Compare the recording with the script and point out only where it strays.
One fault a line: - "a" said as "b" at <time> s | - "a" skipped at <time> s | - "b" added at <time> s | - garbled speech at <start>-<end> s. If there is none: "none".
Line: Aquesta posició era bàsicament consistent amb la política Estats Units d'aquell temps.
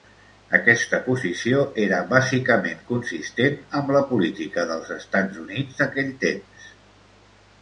- "dels" added at 4.7 s